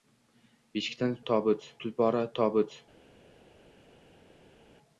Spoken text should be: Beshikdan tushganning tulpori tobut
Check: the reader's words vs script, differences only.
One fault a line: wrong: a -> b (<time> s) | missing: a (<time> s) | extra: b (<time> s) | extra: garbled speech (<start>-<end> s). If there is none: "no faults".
wrong: tushganning -> tobut (1.3 s)